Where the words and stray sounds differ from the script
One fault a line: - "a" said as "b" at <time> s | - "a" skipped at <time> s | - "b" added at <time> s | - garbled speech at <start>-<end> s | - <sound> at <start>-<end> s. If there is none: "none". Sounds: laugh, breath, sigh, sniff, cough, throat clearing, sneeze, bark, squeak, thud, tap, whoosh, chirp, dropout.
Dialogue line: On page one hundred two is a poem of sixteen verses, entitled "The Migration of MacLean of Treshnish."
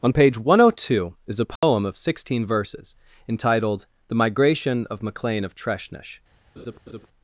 - dropout at 1.6-1.6 s
- laugh at 6.6-7.1 s